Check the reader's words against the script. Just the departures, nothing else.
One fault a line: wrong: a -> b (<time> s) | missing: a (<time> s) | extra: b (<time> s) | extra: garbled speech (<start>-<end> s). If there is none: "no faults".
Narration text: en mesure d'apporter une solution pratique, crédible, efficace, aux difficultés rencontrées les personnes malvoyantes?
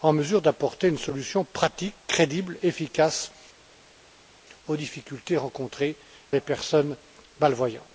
no faults